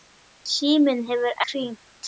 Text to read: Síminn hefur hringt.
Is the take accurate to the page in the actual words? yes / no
yes